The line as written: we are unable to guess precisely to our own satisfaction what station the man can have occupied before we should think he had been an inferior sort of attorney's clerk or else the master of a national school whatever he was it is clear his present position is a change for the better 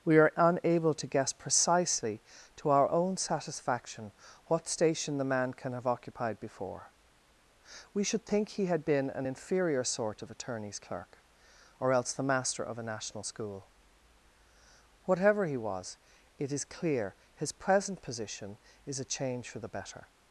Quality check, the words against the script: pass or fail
pass